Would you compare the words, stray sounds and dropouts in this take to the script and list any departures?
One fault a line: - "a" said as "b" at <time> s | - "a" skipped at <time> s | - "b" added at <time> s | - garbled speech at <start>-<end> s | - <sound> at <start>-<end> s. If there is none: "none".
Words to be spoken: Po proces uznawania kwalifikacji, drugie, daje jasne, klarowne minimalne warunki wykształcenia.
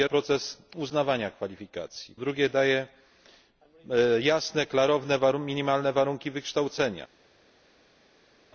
none